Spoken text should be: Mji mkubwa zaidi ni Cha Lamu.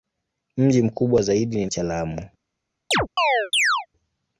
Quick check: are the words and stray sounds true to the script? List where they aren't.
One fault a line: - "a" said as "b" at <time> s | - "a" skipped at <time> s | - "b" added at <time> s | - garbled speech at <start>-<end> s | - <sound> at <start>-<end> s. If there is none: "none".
- chirp at 2.9-3.9 s